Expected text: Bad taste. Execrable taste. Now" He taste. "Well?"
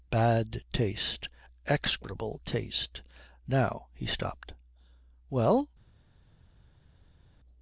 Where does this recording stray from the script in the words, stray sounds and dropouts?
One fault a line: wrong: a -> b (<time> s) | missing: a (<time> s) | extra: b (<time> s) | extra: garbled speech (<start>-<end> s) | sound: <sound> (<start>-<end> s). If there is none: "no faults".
wrong: taste -> stopped (4.1 s)